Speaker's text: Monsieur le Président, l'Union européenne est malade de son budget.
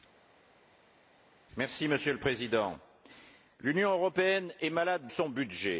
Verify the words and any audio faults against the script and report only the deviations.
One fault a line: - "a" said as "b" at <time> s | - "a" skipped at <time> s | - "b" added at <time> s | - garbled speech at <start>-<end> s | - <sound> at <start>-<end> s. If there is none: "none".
- "de" skipped at 5.1 s